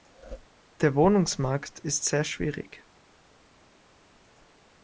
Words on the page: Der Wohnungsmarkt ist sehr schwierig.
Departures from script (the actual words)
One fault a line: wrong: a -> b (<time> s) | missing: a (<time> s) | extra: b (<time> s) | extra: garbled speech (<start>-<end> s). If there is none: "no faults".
no faults